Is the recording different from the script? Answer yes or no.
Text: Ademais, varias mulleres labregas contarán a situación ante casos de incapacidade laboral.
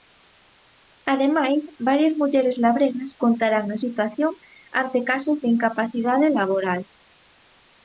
no